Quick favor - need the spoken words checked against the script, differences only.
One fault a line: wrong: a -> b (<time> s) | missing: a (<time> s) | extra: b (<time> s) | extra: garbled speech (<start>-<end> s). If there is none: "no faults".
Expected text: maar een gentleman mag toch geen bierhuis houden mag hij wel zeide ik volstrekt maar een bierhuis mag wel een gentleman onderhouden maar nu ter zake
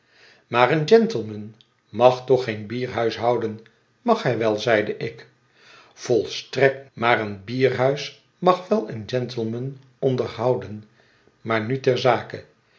no faults